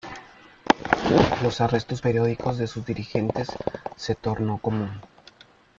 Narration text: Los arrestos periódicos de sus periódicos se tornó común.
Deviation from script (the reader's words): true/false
true